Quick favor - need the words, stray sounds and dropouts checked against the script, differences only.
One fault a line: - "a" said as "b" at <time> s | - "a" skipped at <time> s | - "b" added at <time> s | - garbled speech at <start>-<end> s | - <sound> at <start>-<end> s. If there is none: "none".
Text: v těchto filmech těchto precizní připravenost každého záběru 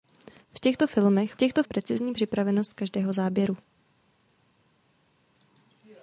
none